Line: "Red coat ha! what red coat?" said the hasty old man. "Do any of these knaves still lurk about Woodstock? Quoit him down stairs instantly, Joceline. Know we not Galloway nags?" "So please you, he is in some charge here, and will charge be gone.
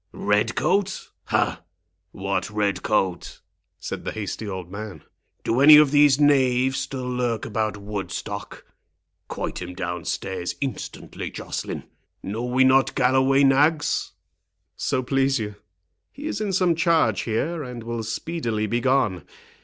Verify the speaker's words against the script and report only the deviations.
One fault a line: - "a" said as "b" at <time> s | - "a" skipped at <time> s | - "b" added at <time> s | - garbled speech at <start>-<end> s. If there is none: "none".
- "charge" said as "speedily" at 18.0 s